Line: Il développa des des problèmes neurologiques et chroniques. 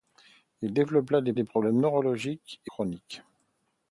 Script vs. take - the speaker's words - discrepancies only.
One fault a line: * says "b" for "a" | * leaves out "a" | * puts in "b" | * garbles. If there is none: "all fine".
all fine